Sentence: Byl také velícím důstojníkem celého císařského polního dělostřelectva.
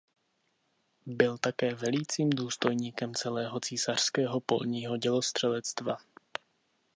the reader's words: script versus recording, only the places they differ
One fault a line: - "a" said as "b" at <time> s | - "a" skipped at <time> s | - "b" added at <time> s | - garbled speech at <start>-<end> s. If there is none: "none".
none